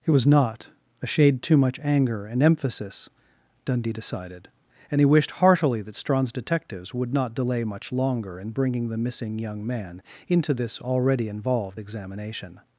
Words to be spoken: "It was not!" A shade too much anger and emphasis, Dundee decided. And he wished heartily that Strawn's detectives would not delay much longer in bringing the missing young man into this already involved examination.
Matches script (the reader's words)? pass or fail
pass